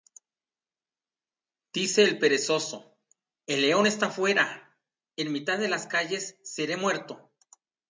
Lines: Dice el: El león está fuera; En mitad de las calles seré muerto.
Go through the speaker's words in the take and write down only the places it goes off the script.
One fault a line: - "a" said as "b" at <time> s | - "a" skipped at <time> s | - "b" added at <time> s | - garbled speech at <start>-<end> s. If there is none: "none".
- "perezoso" added at 2.2 s